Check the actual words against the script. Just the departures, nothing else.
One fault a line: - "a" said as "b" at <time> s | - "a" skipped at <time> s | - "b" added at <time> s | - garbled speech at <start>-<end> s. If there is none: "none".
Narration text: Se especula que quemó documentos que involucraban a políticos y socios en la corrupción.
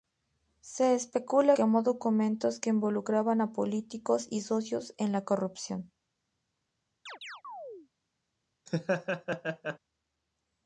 - "que" skipped at 1.6 s